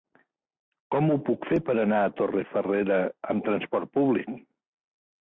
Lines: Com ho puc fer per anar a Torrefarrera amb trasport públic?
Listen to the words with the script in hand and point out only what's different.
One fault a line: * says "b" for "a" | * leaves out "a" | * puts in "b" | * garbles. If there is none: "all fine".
all fine